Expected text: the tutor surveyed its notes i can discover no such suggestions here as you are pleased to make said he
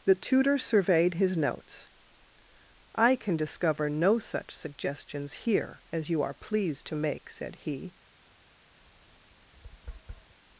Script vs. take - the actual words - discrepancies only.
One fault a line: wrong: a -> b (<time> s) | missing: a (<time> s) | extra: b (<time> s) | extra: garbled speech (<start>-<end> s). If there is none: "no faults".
wrong: its -> his (1.1 s)